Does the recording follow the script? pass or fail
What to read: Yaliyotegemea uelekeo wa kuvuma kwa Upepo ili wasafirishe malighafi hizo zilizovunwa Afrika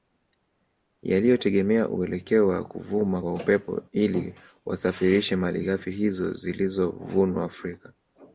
pass